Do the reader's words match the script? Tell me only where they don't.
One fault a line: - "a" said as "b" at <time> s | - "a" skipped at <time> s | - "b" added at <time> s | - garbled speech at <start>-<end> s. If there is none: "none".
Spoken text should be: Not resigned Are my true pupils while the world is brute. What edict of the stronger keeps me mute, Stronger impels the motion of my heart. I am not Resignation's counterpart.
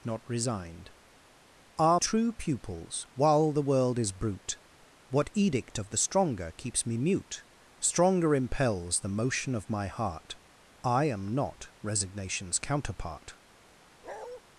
- "my" skipped at 2.0 s